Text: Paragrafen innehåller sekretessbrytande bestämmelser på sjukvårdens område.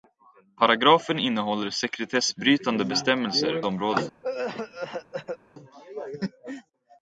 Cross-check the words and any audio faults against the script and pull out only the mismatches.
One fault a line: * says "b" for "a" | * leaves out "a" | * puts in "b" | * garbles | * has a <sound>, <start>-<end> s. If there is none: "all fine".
* leaves out "på sjukvårdens"
* has a cough, 4.2-5.4 s